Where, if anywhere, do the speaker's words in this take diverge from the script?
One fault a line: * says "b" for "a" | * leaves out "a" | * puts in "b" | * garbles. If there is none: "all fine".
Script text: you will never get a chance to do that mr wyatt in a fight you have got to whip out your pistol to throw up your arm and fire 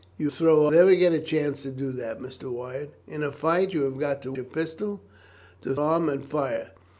* says "throw" for "will"
* leaves out "whip out"
* leaves out "throw up your"